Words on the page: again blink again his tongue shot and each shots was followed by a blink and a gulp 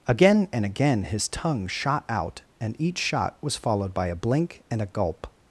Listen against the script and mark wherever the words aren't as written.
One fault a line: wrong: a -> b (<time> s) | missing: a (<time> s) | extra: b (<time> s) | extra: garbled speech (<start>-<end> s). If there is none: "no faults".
wrong: blink -> and (0.5 s)
extra: out (2.1 s)
wrong: shots -> shot (3.0 s)